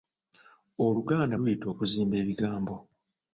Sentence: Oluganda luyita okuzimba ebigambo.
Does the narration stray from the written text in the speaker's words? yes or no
no